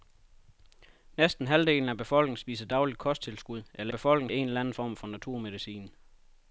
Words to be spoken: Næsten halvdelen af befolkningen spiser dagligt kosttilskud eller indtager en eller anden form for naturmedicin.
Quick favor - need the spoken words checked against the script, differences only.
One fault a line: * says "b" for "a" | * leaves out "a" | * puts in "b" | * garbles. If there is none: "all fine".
* says "befolkningen" for "indtager"